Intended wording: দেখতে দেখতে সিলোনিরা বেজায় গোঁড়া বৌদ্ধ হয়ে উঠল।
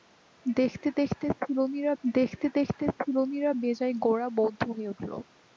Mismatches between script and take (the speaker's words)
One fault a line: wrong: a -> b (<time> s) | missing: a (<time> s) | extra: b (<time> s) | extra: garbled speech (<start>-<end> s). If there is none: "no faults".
extra: দেখতে দেখতে সিলোনিরা (2.0 s)